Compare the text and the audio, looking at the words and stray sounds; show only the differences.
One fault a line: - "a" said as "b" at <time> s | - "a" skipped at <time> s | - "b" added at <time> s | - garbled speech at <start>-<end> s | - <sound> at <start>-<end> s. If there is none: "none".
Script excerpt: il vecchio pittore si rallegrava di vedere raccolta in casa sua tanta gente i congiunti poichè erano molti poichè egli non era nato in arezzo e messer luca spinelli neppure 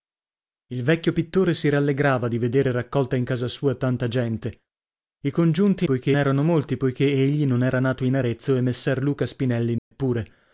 - dropout at 9.8-9.9 s